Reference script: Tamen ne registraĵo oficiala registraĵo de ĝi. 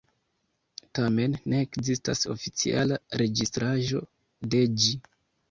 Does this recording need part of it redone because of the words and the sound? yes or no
yes